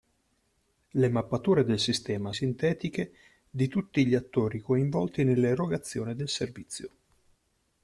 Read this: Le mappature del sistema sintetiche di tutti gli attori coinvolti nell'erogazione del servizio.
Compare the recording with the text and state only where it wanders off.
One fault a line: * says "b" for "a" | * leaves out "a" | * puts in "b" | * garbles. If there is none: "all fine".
all fine